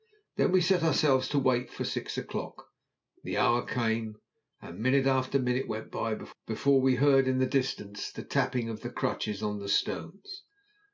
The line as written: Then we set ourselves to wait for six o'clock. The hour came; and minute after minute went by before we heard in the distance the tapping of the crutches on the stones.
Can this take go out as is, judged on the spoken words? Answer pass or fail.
pass